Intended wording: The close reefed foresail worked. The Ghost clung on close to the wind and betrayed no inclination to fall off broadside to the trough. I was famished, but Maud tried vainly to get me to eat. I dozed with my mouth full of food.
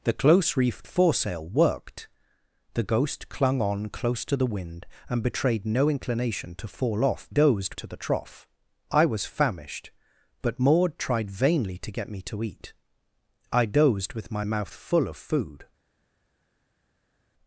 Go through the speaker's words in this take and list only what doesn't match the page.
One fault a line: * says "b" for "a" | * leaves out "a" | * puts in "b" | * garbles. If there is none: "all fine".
* says "dozed" for "broadside"